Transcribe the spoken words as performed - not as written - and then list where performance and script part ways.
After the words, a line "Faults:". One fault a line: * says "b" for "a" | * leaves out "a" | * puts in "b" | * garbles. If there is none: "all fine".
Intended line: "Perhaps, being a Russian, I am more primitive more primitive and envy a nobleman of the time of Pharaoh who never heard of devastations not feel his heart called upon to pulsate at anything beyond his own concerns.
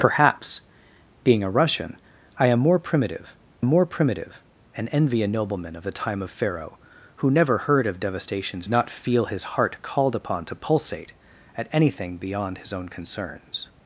"Perhaps, being a Russian, I am more primitive more primitive and envy a nobleman of the time of Pharaoh who never heard of devastations not feel his heart called upon to pulsate at anything beyond his own concerns.
Faults:
all fine